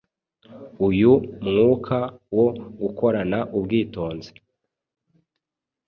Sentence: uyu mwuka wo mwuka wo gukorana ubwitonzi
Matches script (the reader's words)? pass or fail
fail